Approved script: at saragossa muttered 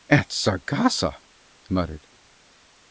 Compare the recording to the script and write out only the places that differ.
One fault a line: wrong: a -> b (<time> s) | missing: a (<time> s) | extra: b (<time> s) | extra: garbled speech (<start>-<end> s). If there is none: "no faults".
no faults